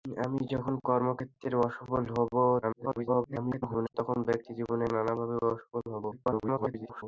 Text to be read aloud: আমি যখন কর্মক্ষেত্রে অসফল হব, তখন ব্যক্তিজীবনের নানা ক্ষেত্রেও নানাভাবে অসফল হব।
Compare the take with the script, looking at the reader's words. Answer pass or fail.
fail